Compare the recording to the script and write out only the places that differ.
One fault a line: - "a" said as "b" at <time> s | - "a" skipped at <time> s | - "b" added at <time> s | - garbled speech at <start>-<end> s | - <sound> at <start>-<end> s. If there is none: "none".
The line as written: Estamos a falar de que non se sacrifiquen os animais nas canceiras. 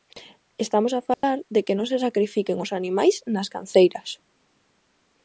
- dropout at 1.1-1.2 s